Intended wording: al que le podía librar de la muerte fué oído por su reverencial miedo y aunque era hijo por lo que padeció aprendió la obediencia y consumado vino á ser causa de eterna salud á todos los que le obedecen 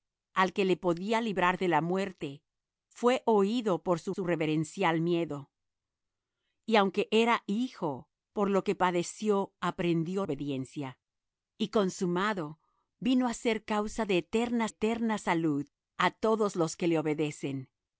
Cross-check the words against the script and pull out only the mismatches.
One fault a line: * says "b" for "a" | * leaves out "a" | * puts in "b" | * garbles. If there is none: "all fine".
* puts in "su"
* leaves out "la"
* puts in "eterna"